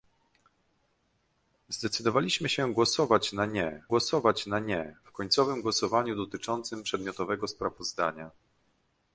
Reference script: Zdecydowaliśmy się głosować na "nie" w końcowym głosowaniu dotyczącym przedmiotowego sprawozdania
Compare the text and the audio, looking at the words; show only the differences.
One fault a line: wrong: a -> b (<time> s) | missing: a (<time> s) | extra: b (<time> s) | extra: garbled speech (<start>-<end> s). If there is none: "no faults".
extra: głosować na nie (3.9 s)